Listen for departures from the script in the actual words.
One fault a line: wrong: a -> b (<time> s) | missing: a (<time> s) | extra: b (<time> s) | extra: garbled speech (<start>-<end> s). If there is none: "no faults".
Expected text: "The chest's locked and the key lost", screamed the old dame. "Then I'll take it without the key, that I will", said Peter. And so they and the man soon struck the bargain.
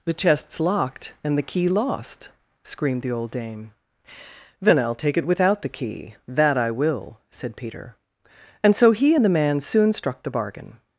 wrong: they -> he (8.9 s)